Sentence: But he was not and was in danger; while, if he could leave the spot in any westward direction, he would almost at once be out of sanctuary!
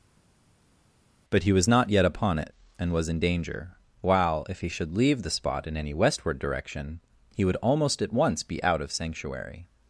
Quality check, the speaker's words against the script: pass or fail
fail